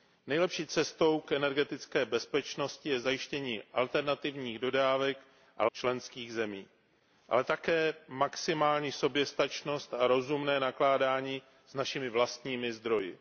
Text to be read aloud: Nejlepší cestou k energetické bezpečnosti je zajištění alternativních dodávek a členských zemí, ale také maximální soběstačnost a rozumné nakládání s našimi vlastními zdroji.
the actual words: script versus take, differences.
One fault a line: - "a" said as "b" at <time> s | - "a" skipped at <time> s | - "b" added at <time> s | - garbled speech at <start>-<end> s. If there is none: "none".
none